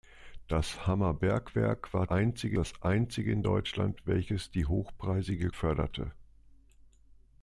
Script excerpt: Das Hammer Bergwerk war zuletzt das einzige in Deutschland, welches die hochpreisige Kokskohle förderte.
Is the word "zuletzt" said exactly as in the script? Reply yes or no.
no